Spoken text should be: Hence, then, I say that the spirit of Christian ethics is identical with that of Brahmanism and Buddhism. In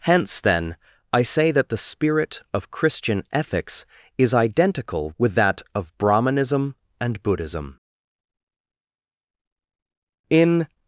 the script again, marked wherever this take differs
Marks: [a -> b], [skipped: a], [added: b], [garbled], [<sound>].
Hence, then, I say that the spirit of Christian ethics is identical with that of Brahmanism and Buddhism. In